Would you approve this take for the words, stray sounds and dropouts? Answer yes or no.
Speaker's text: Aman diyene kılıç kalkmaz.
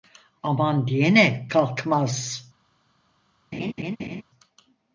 no